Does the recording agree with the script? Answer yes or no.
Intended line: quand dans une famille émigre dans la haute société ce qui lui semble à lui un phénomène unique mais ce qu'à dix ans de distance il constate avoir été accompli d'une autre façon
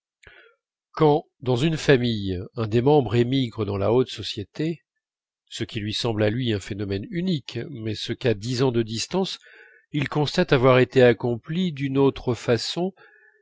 no